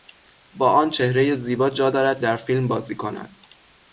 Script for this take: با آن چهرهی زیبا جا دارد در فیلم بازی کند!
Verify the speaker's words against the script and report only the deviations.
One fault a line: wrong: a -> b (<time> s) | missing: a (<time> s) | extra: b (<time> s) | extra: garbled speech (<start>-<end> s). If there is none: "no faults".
no faults